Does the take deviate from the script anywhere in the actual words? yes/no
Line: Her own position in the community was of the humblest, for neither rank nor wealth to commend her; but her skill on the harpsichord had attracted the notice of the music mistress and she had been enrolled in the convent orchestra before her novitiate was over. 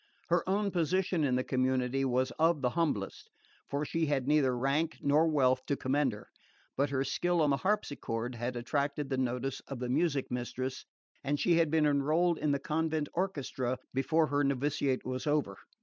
yes